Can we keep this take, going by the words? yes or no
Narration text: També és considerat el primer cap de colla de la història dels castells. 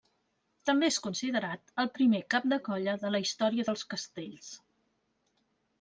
yes